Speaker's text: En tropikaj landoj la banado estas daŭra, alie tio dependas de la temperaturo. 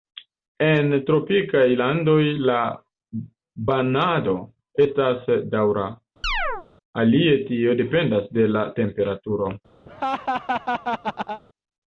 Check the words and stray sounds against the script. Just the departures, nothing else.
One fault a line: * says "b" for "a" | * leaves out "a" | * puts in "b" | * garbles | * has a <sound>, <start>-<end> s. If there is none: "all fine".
* has a chirp, 6.2-6.7 s
* has a laugh, 9.9-11.4 s